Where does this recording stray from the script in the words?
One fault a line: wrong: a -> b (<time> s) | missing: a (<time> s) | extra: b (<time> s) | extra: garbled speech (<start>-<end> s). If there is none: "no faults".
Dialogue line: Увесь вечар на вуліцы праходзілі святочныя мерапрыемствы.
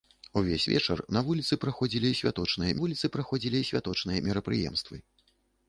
extra: вуліцы праходзілі святочныя (2.8 s)